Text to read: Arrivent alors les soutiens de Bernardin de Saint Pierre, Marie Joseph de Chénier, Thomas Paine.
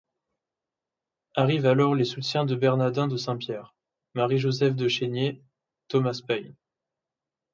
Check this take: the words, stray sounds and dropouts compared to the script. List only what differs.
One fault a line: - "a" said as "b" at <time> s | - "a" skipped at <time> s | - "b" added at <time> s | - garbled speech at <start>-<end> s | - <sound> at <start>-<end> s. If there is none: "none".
none